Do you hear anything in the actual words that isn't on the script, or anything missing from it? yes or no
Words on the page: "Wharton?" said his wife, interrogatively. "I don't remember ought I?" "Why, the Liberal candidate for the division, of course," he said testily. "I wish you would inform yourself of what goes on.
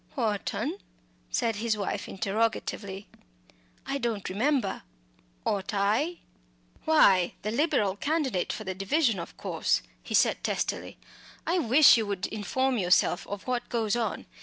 no